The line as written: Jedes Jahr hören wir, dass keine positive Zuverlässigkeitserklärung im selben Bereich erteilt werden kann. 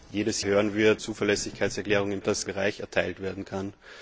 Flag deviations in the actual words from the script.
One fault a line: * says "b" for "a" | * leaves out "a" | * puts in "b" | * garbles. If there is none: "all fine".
* leaves out "Jahr"
* leaves out "dass keine positive"
* says "dass" for "selben"